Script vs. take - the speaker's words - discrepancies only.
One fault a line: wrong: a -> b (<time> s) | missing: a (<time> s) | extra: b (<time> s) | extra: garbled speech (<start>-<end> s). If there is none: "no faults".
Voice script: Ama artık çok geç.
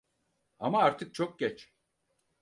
no faults